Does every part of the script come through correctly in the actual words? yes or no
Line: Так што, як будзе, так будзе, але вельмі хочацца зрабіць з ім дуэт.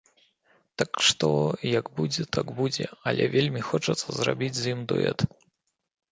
yes